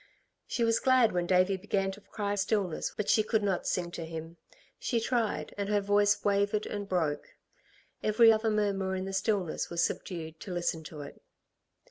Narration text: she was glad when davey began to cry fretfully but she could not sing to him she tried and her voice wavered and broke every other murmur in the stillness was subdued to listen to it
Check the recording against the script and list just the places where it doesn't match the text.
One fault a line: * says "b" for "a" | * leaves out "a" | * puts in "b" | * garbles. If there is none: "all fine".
* says "stillness" for "fretfully"